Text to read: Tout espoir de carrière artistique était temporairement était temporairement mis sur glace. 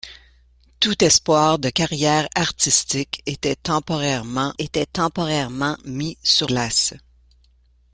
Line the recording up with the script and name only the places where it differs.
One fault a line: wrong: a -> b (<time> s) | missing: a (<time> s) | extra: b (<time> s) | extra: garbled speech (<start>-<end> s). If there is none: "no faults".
no faults